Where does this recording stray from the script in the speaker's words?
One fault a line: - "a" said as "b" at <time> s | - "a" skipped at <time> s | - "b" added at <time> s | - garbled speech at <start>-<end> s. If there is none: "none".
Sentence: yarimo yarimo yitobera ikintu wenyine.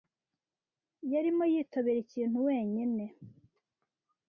- "yarimo" skipped at 1.4 s